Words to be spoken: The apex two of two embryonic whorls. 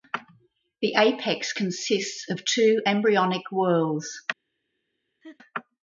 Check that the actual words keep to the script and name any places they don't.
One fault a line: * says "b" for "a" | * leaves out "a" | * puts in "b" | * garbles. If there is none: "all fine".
* says "consists" for "two"